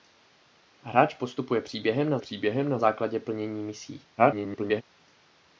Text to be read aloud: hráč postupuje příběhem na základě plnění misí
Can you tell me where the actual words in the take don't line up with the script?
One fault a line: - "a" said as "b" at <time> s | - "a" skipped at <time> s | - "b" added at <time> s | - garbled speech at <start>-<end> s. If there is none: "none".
- "příběhem na" added at 2.2 s
- garbled speech at 4.2-4.8 s